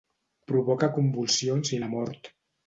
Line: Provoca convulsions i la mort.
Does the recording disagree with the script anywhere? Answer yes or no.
no